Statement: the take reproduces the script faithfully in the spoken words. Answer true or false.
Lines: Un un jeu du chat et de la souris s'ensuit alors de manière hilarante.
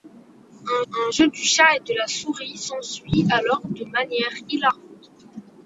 true